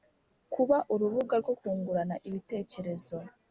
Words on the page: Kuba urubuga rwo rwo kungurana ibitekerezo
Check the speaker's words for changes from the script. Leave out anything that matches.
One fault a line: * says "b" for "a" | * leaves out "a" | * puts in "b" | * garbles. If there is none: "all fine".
* leaves out "rwo"